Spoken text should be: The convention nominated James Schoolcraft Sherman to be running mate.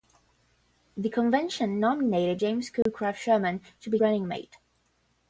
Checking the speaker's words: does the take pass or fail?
pass